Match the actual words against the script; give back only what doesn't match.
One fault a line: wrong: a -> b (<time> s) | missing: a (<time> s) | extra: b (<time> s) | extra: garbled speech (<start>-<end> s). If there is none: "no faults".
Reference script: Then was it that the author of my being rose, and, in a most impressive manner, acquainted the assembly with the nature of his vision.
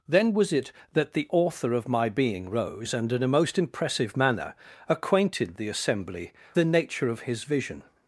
missing: with (6.3 s)